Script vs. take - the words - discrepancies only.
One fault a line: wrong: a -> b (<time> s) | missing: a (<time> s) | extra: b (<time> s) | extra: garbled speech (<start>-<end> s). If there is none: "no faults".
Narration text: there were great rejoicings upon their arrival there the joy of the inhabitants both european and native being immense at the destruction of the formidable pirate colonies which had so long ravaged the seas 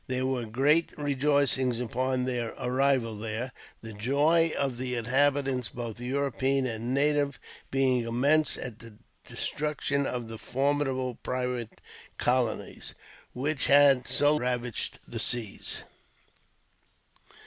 missing: long (14.3 s)